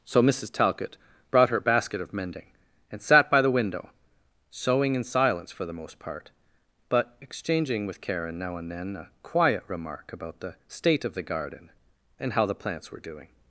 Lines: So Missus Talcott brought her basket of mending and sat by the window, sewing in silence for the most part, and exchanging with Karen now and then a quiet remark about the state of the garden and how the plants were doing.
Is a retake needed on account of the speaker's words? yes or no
yes